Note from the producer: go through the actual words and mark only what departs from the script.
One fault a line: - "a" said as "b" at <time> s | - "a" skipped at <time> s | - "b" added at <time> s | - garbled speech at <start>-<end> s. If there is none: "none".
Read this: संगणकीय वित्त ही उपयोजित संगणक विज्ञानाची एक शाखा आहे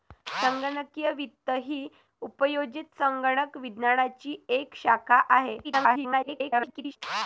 - garbled speech at 5.6-7.0 s